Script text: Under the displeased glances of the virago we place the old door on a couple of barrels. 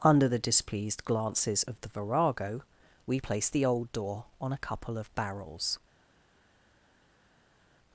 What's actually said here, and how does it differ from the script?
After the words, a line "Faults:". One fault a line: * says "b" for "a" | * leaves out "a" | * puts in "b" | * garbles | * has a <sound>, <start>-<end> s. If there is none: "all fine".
Under the displeased glances of the virago we place the old door on a couple of barrels.
Faults:
all fine